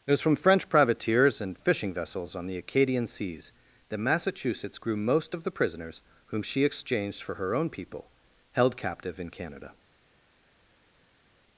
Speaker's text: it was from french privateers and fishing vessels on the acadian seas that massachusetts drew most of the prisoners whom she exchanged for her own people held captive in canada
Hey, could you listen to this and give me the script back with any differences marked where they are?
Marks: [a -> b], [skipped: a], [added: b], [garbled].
it was from french privateers and fishing vessels on the acadian seas that massachusetts [drew -> grew] most of the prisoners whom she exchanged for her own people held captive in canada